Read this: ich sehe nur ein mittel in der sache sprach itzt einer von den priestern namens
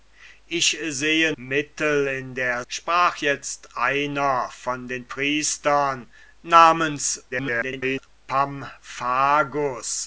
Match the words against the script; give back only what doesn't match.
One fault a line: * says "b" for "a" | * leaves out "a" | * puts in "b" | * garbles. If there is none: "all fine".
* leaves out "nur ein"
* leaves out "sache"
* garbles